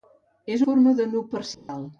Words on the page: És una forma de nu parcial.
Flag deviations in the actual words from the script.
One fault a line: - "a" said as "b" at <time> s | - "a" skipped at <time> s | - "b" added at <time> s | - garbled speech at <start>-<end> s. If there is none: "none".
- "una" skipped at 0.6 s